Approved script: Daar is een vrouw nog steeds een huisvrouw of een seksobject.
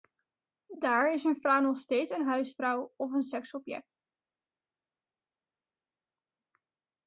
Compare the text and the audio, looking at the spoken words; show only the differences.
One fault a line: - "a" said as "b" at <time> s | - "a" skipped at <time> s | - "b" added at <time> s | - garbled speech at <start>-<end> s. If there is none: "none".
none